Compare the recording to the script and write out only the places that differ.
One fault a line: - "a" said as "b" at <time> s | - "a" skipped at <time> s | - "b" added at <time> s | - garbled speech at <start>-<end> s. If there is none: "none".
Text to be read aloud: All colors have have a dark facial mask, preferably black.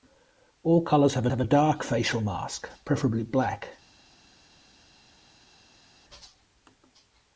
none